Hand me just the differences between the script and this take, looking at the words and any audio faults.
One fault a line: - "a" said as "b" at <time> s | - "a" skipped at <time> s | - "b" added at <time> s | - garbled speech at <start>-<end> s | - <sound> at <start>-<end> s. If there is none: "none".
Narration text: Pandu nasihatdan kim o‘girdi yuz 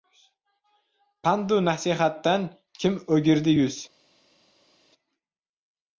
none